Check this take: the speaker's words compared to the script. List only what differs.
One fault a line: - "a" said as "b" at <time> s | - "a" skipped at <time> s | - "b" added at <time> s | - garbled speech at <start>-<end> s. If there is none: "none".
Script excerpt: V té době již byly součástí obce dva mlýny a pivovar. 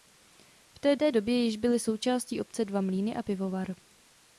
- "té" added at 1.0 s